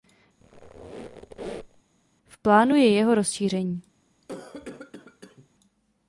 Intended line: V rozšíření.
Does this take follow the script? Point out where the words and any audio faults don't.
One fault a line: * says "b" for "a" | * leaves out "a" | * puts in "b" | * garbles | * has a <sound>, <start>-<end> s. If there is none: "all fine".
* has a squeak, 0.4-1.8 s
* puts in "plánu je jeho"
* has a cough, 4.2-5.5 s